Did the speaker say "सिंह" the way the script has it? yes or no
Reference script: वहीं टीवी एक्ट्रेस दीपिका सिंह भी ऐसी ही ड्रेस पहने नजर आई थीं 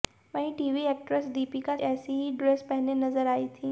no